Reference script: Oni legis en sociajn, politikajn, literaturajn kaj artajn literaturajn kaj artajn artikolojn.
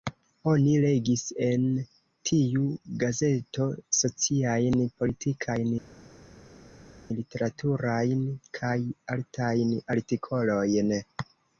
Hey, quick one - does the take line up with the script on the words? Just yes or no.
no